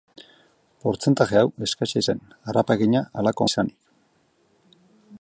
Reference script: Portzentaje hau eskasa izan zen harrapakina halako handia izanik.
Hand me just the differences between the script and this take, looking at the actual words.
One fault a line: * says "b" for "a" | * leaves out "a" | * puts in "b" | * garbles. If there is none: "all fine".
* leaves out "izan"
* leaves out "handia"